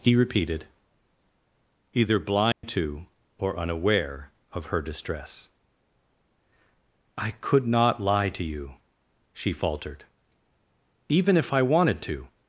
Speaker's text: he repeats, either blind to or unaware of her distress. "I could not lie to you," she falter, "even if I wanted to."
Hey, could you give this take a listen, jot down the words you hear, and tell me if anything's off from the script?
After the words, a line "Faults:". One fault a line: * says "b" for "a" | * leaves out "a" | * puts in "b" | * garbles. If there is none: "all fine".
he repeated, either blind to or unaware of her distress. "I could not lie to you," she faltered, "even if I wanted to."
Faults:
* says "repeated" for "repeats"
* says "faltered" for "falter"